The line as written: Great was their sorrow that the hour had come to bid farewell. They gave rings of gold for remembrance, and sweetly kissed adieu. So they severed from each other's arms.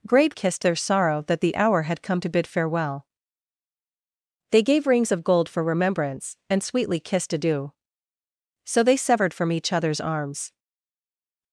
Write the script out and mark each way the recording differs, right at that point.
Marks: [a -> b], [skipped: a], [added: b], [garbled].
Great [was -> kissed] their sorrow that the hour had come to bid farewell. They gave rings of gold for remembrance, and sweetly kissed adieu. So they severed from each other's arms.